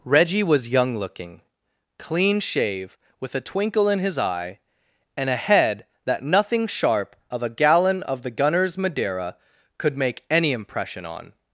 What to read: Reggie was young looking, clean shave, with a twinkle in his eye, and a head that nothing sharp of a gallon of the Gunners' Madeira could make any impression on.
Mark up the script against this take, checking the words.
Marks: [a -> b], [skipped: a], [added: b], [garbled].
Reggie was young looking, clean shave, with a twinkle in his eye, and a head that nothing sharp of a gallon of the Gunners' Madeira could make any impression on.